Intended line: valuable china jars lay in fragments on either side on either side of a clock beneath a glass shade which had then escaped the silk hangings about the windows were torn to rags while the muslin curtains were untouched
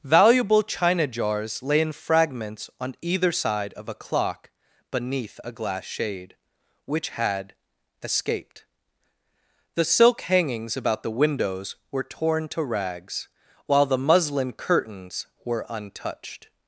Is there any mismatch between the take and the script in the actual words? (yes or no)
yes